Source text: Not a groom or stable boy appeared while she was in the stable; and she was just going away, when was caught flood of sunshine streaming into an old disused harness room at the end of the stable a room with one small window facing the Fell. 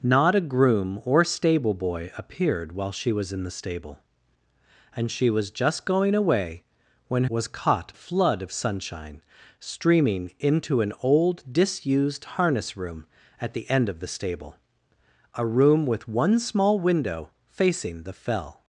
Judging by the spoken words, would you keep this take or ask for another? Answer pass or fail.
pass